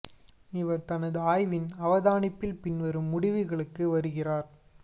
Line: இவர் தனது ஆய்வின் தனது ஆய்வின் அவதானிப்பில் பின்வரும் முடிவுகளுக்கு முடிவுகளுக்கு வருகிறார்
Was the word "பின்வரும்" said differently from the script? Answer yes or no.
no